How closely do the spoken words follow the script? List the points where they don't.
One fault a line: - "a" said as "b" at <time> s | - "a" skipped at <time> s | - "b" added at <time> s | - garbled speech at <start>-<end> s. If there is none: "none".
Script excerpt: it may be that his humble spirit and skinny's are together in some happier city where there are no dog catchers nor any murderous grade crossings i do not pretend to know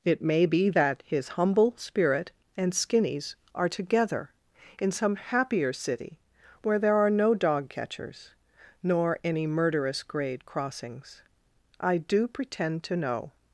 - "not" skipped at 12.3 s